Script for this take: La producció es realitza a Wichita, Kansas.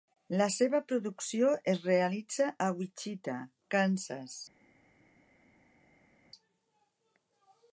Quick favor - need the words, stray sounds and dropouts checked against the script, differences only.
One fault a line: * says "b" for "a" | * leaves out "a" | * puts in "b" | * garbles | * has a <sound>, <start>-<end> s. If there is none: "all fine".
* puts in "seva"